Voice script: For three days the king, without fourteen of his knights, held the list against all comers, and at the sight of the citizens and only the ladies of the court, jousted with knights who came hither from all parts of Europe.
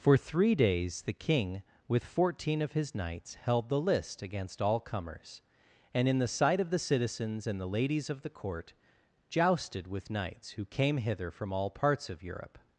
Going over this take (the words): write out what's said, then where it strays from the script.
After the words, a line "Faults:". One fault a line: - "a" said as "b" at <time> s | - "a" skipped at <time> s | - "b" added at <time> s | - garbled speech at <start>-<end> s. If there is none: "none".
For three days the king, with fourteen of his knights, held the list against all comers, and in the sight of the citizens and the ladies of the court, jousted with knights who came hither from all parts of Europe.
Faults:
- "without" said as "with" at 1.9 s
- "at" said as "in" at 6.1 s
- "only" skipped at 7.6 s